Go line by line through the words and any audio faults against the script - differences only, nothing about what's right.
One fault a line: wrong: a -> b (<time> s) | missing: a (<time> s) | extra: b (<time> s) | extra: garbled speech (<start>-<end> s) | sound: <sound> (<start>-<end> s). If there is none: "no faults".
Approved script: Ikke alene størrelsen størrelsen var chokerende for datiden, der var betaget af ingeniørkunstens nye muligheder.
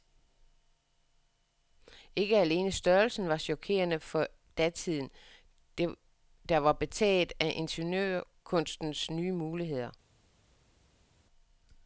missing: størrelsen (3.3 s)